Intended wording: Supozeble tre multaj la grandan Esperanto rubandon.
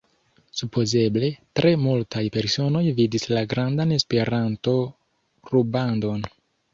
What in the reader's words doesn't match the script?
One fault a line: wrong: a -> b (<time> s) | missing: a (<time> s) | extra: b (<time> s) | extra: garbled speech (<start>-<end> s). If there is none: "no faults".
extra: personoj vidis (2.4 s)